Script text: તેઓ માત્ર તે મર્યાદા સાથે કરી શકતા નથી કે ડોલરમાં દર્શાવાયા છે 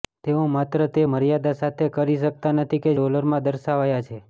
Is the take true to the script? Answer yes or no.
yes